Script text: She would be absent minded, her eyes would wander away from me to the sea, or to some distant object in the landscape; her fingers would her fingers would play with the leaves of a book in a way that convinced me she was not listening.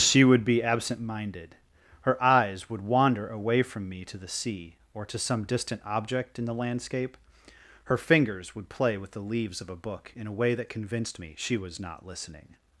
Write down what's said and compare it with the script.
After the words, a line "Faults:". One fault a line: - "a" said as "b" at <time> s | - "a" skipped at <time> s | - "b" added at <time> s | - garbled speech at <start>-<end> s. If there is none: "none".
She would be absent minded, her eyes would wander away from me to the sea, or to some distant object in the landscape; her fingers would play with the leaves of a book in a way that convinced me she was not listening.
Faults:
- "her fingers would" skipped at 8.7 s